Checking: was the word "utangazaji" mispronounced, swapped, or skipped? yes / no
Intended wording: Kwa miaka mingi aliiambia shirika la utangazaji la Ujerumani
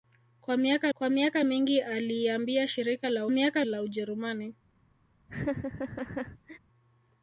yes